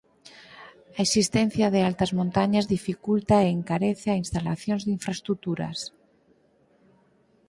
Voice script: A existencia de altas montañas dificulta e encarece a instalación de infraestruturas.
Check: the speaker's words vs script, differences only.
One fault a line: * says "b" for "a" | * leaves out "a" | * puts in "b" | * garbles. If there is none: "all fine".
all fine